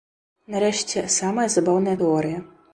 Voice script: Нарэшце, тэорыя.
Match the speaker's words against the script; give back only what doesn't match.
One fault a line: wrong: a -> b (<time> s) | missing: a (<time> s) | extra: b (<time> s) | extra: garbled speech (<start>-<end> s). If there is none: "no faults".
extra: самая забаўная (1.2 s)